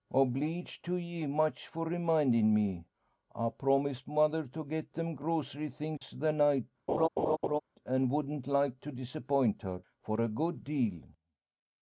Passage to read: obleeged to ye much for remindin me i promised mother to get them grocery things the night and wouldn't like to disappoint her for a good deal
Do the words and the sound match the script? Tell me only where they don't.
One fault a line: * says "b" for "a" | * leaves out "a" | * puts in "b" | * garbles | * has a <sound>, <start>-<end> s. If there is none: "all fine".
* has a dropout, 6.0-6.0 s
* has a laugh, 6.9-7.6 s